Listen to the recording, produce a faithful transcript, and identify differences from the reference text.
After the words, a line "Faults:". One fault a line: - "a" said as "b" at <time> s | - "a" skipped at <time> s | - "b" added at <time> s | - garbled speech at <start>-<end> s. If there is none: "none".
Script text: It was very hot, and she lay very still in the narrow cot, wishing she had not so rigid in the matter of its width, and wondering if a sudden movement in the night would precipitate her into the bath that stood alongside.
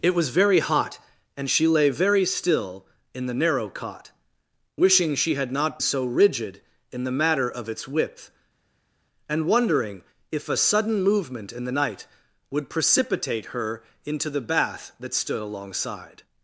It was very hot, and she lay very still in the narrow cot, wishing she had not so rigid in the matter of its width, and wondering if a sudden movement in the night would precipitate her into the bath that stood alongside.
Faults:
none